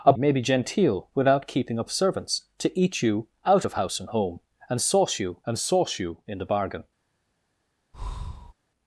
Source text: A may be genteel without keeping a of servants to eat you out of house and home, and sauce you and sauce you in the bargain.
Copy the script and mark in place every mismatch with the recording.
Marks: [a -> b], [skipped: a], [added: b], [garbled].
A may be genteel without keeping a of servants to eat you out of house and home, and sauce you and sauce you in the bargain.